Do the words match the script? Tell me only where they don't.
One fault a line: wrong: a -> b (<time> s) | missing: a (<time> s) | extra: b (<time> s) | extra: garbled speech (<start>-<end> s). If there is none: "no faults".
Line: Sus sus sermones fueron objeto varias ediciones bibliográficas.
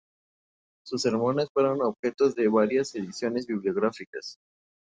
missing: sus (1.0 s)
extra: de (2.3 s)